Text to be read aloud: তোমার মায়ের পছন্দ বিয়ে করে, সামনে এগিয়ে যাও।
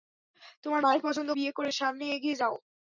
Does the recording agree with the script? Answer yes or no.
yes